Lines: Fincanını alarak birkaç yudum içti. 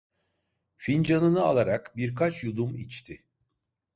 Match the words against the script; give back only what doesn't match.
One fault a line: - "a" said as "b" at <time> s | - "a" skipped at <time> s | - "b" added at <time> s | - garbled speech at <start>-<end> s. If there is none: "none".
none